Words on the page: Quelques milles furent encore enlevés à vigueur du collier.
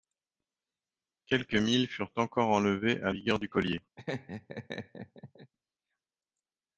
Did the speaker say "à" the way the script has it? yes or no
yes